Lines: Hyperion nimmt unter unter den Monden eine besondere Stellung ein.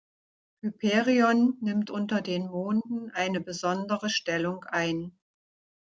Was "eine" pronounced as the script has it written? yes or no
yes